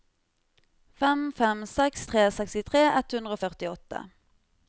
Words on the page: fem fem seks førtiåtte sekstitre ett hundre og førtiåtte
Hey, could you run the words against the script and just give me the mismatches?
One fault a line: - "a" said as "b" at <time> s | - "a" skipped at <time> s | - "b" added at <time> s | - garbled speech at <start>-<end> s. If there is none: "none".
- "førtiåtte" said as "tre" at 2.1 s